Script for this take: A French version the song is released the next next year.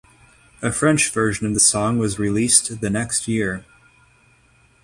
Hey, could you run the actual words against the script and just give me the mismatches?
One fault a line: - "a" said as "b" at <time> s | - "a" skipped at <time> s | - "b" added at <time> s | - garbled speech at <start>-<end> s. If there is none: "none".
- "of" added at 1.4 s
- "is" said as "was" at 2.0 s
- "next" skipped at 3.3 s